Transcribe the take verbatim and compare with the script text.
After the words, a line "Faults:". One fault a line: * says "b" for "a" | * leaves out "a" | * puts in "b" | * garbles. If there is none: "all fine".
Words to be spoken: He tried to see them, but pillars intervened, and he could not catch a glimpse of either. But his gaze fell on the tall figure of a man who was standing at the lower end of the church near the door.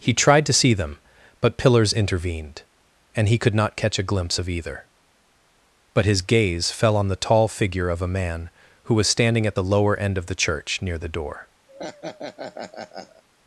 He tried to see them, but pillars intervened, and he could not catch a glimpse of either. But his gaze fell on the tall figure of a man who was standing at the lower end of the church near the door.
Faults:
all fine